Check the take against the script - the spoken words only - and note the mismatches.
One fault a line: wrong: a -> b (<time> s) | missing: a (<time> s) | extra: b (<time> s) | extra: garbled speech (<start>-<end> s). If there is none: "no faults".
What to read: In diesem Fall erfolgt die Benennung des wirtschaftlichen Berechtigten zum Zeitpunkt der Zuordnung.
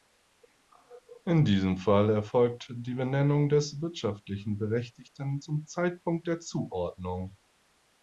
no faults